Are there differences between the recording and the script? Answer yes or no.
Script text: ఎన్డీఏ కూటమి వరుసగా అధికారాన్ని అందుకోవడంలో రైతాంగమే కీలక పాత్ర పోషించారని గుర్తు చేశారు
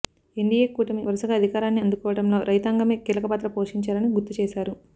no